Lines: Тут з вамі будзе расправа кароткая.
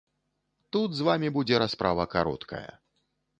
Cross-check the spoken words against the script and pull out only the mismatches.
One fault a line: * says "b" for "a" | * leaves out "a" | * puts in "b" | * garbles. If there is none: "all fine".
all fine